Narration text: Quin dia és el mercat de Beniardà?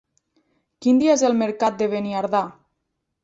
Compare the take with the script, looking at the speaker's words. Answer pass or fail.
pass